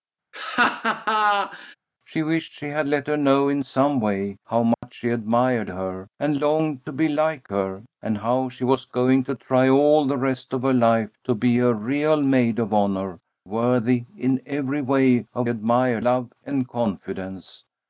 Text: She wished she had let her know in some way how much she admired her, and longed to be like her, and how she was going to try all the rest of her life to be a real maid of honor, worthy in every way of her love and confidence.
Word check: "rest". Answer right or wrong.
right